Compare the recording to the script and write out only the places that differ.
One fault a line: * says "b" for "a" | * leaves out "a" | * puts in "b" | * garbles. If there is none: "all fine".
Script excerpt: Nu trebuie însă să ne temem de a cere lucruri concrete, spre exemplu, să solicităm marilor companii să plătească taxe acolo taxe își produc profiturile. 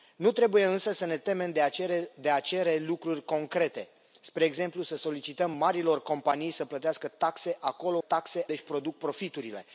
all fine